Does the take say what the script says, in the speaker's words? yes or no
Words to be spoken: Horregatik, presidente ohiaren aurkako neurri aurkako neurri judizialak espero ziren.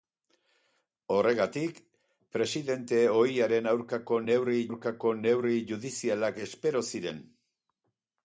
yes